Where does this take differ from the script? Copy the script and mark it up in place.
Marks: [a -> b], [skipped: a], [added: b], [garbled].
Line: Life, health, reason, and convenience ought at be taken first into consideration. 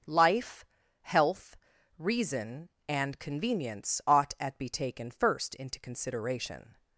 Life, health, reason, and convenience ought at be taken first into consideration.